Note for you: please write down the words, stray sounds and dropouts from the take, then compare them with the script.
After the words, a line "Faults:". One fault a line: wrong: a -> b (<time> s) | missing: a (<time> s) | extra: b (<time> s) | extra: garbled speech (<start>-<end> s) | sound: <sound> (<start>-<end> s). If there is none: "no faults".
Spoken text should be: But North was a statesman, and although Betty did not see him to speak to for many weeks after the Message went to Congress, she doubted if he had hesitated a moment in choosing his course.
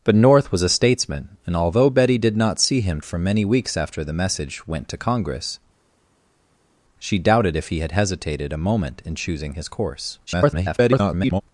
But North was a statesman, and although Betty did not see him for many weeks after the Message went to Congress, she doubted if he had hesitated a moment in choosing his course. [garbled]
Faults:
missing: to speak to (3.0 s)
extra: garbled speech (10.3-11.4 s)